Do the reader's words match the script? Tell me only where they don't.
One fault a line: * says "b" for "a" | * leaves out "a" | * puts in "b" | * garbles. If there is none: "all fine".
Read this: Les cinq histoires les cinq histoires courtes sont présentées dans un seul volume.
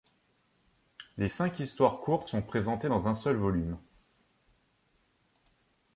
* leaves out "les cinq histoires"